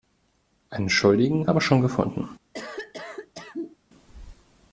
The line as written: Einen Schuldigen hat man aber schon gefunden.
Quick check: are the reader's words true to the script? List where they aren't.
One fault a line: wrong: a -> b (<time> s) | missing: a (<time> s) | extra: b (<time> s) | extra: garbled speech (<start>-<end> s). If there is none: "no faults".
missing: hat man (1.5 s)